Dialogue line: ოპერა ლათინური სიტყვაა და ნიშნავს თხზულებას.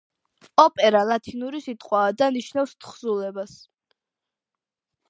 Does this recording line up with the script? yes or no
yes